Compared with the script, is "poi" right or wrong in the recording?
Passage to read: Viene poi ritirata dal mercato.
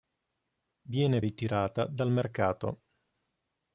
wrong